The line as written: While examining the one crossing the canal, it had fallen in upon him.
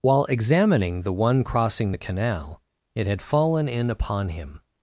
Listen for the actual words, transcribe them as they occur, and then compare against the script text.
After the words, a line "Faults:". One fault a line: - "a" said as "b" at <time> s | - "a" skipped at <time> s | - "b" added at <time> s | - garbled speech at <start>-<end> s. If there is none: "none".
While examining the one crossing the canal, it had fallen in upon him.
Faults:
none